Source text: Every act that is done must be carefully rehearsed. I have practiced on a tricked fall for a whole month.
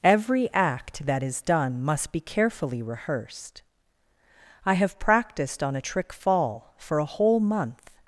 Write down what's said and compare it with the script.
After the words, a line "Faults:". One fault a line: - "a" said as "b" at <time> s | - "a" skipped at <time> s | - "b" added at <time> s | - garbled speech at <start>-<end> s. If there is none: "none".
Every act that is done must be carefully rehearsed. I have practiced on a trick fall for a whole month.
Faults:
- "tricked" said as "trick" at 5.8 s